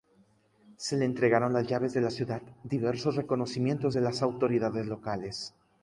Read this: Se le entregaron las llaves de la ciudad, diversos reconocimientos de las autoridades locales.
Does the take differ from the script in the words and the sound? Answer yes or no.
no